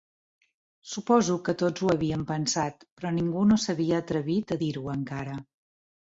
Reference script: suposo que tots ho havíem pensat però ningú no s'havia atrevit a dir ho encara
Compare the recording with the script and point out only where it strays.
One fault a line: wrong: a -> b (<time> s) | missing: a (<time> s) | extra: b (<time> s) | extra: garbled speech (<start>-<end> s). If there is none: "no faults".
no faults